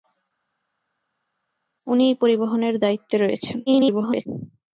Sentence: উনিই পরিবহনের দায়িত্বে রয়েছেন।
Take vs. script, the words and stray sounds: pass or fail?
fail